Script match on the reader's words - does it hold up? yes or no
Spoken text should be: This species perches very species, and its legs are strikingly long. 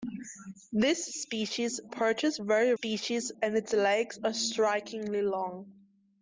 yes